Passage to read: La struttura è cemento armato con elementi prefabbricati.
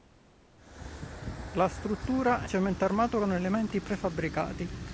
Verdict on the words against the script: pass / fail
pass